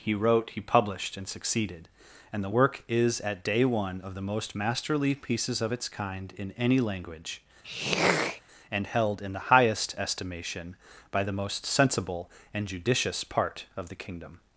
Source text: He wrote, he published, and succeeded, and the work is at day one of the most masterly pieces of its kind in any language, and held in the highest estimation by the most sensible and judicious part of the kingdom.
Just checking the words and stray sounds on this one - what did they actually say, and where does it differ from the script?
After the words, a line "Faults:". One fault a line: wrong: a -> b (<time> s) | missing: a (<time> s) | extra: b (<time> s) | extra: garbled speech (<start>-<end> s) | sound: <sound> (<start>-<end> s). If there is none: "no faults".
He wrote, he published, and succeeded, and the work is at day one of the most masterly pieces of its kind in any language, and held in the highest estimation by the most sensible and judicious part of the kingdom.
Faults:
sound: throat clearing (7.6-8.4 s)